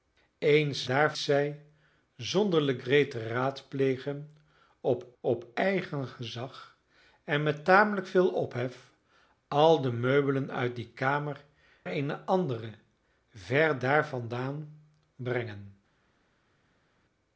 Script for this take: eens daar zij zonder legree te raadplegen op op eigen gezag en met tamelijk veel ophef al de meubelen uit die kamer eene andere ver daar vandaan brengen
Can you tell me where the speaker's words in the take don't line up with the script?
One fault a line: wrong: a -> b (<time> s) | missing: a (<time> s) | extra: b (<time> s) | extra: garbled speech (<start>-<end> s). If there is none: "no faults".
no faults